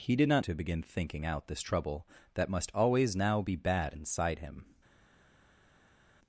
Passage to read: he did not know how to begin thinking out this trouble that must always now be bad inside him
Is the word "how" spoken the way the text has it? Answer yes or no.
no